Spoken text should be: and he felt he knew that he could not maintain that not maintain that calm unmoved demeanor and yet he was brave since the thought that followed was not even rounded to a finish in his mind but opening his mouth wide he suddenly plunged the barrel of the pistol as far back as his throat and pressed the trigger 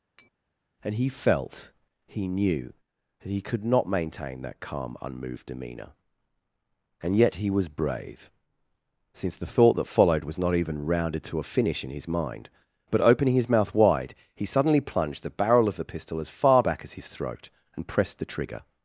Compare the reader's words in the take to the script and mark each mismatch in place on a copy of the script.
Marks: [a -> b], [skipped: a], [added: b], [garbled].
and he felt he knew that he could not maintain that [skipped: not maintain that] calm unmoved demeanor and yet he was brave since the thought that followed was not even rounded to a finish in his mind but opening his mouth wide he suddenly plunged the barrel of the pistol as far back as his throat and pressed the trigger